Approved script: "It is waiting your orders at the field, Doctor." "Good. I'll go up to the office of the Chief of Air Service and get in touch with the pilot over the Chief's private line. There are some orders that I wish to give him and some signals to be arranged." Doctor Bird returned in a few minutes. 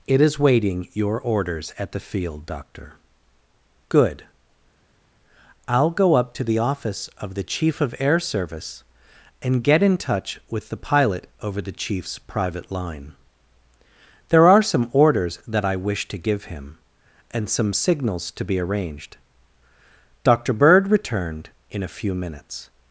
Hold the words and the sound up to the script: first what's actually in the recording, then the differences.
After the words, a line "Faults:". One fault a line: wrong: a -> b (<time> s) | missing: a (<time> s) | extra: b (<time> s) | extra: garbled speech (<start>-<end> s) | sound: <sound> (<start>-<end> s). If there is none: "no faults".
"It is waiting your orders at the field, Doctor." "Good. I'll go up to the office of the Chief of Air Service and get in touch with the pilot over the Chief's private line. There are some orders that I wish to give him and some signals to be arranged." Doctor Bird returned in a few minutes.
Faults:
no faults